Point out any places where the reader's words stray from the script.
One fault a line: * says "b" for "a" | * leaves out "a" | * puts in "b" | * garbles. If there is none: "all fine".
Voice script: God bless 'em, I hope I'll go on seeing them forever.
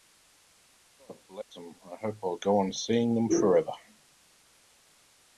all fine